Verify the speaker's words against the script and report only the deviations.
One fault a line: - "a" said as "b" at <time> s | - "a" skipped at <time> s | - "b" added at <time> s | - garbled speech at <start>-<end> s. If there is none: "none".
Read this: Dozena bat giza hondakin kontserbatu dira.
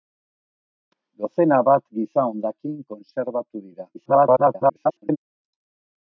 - garbled speech at 3.9-5.2 s